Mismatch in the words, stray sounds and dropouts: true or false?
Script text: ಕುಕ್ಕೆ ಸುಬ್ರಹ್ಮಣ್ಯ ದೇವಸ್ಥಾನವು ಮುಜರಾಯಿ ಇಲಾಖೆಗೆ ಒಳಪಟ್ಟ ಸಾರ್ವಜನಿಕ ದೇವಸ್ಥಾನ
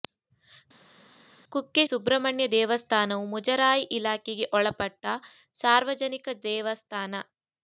false